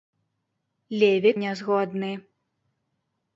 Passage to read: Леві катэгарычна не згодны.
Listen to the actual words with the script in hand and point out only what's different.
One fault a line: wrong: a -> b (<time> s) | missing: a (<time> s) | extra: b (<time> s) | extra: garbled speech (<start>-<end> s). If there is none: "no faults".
missing: катэгарычна (1.3 s)